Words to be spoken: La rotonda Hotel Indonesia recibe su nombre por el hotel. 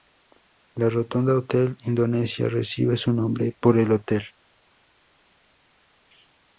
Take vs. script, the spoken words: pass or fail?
pass